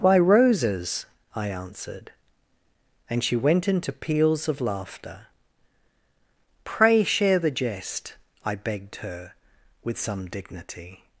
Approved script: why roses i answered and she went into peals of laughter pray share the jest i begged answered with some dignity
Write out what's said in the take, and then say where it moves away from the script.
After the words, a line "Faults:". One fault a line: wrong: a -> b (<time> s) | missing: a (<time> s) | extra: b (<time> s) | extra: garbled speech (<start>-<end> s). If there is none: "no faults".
why roses i answered and she went into peals of laughter pray share the jest i begged her with some dignity
Faults:
wrong: answered -> her (9.1 s)